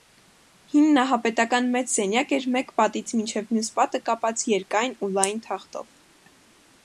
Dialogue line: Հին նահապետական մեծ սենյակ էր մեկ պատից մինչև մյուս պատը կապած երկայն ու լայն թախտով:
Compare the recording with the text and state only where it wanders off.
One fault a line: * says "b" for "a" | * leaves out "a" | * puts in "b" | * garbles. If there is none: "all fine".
all fine